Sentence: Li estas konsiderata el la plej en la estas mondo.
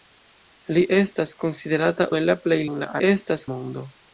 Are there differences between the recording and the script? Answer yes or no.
no